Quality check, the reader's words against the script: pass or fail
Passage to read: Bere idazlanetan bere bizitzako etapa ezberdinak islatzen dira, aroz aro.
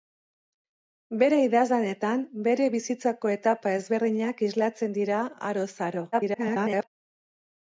fail